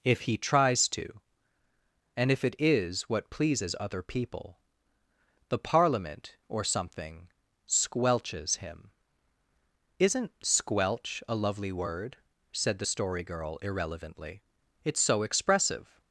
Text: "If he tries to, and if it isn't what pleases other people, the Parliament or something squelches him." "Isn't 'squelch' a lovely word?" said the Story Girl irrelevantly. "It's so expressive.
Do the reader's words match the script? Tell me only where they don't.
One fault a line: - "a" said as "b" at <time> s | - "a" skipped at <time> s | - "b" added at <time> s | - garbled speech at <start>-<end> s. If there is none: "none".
- "isn't" said as "is" at 2.6 s